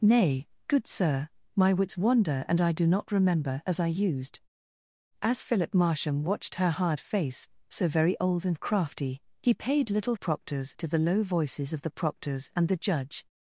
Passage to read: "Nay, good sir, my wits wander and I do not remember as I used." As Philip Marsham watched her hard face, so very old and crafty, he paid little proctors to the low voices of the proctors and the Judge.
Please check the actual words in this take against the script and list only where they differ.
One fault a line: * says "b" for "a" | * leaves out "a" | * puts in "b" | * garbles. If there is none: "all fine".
all fine